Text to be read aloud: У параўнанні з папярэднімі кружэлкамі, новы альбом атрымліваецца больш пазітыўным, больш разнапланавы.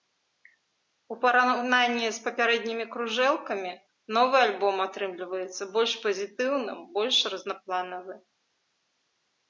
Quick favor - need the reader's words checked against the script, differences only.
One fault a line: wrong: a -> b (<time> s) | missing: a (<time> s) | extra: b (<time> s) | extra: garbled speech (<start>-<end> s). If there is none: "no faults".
no faults